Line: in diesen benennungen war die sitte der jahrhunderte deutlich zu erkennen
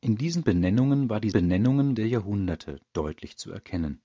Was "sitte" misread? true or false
true